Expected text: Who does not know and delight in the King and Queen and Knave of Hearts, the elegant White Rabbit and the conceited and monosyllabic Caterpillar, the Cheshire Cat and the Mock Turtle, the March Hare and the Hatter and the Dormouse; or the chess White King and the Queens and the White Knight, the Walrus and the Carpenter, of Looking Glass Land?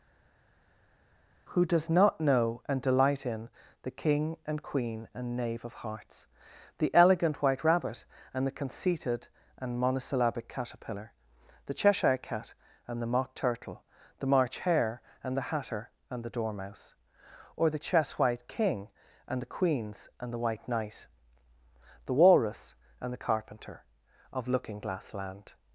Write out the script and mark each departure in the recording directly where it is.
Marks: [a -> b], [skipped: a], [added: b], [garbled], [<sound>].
Who does not know and delight in the King and Queen and Knave of Hearts, the elegant White Rabbit and the conceited and monosyllabic Caterpillar, the Cheshire Cat and the Mock Turtle, the March Hare and the Hatter and the Dormouse; or the chess White King and the Queens and the White Knight, the Walrus and the Carpenter, of Looking Glass Land?